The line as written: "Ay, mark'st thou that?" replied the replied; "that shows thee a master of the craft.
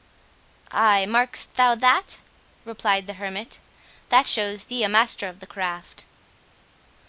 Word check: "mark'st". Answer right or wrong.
right